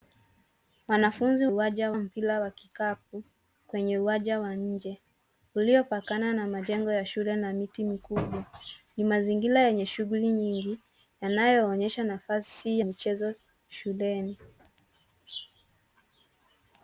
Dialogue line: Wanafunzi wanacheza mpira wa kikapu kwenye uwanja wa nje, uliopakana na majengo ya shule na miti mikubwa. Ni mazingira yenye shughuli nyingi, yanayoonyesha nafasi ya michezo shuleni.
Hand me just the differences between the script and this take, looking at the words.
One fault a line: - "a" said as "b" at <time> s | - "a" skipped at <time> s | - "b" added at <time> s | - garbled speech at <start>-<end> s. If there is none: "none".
- "wanacheza" said as "uwanja" at 1.5 s
- "ya" skipped at 12.8 s